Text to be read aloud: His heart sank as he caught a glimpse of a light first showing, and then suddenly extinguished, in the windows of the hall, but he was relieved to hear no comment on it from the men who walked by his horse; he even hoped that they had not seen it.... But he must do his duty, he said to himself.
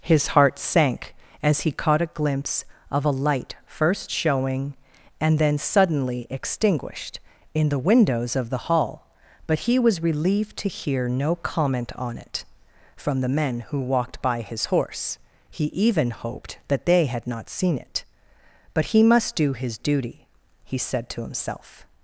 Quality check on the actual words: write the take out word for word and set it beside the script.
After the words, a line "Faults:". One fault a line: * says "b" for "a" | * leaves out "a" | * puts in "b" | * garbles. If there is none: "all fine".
His heart sank as he caught a glimpse of a light first showing, and then suddenly extinguished, in the windows of the hall, but he was relieved to hear no comment on it from the men who walked by his horse; he even hoped that they had not seen it.... But he must do his duty, he said to himself.
Faults:
all fine